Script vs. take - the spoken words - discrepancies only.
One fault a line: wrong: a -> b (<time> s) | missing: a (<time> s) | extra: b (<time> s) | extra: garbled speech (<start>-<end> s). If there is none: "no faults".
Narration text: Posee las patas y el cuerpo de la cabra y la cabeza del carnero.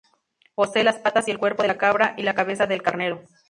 no faults